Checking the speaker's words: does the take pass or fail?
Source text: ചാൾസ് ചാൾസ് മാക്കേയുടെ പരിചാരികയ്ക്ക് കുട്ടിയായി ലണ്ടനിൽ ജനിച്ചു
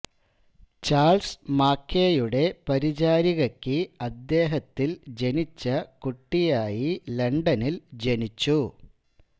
fail